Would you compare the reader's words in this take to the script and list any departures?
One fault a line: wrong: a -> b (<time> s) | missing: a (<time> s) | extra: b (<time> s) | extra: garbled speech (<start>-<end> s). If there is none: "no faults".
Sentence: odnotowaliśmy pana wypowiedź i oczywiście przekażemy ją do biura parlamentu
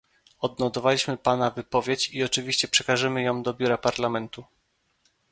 no faults